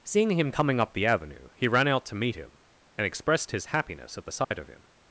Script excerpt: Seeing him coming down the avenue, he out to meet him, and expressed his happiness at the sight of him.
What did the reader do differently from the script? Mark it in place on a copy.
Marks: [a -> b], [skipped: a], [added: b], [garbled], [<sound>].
Seeing him coming [down -> up] the avenue, he [added: ran] out to meet him, and expressed his happiness at the sight [dropout] of him.